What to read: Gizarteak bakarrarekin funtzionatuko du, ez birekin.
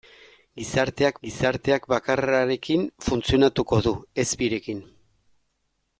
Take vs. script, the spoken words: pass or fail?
fail